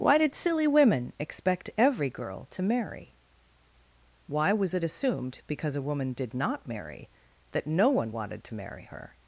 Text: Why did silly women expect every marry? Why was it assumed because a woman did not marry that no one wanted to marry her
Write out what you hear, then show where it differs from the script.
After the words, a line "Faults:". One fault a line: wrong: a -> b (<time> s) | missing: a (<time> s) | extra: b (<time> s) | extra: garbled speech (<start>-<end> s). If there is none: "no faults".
Why did silly women expect every girl to marry? Why was it assumed because a woman did not marry that no one wanted to marry her
Faults:
extra: girl to (2.1 s)